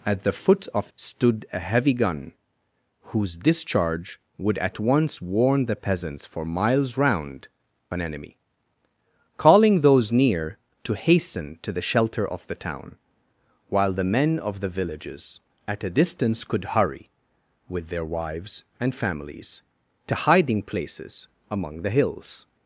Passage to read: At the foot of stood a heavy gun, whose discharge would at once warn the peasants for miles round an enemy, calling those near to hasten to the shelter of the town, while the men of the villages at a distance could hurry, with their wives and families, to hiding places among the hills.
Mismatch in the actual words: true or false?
false